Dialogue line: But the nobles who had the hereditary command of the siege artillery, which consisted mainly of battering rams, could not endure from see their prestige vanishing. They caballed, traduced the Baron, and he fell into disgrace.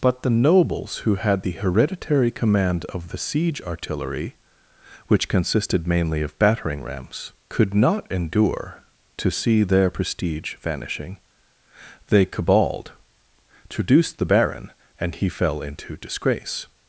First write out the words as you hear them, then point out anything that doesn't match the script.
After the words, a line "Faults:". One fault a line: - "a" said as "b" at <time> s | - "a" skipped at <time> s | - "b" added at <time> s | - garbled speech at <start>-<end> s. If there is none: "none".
But the nobles who had the hereditary command of the siege artillery, which consisted mainly of battering rams, could not endure to see their prestige vanishing. They caballed, traduced the Baron, and he fell into disgrace.
Faults:
- "from" said as "to" at 9.2 s